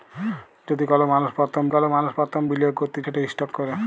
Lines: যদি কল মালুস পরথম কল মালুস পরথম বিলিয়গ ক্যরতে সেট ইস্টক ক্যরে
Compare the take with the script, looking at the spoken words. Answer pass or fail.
pass